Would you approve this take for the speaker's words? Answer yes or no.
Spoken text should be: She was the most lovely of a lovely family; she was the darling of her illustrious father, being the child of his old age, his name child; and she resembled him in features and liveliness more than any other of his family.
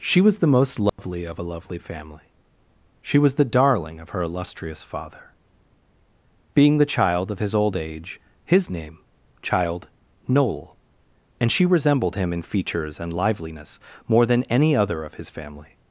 no